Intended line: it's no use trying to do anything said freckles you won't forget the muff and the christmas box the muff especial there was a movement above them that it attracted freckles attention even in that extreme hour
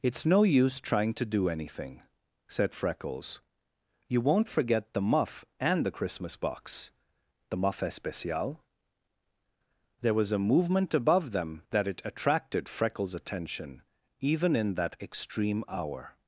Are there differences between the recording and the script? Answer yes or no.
no